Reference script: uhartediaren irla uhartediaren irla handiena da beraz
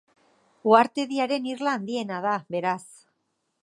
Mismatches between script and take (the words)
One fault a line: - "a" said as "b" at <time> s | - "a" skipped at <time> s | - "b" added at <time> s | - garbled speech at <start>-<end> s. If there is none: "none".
- "uhartediaren irla" skipped at 1.8 s